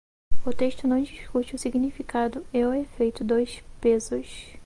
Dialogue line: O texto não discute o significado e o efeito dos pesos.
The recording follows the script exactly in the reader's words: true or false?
true